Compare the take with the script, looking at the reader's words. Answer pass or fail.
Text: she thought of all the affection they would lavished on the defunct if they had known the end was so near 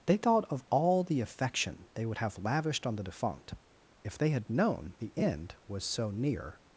fail